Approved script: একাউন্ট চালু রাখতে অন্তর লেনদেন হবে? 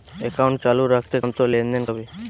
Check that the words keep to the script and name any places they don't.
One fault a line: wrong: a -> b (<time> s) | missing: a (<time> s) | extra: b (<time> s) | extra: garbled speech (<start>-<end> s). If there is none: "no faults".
no faults